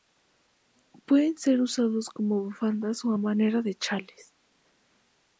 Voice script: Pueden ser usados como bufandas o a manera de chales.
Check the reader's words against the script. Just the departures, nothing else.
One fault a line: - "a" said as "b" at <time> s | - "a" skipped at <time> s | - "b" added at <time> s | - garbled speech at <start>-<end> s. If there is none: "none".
none